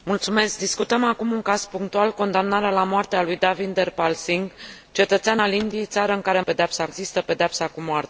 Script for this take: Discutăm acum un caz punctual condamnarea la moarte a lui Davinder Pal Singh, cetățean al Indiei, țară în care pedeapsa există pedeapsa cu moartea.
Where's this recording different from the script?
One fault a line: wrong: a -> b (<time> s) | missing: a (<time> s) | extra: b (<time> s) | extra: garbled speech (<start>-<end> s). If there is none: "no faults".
no faults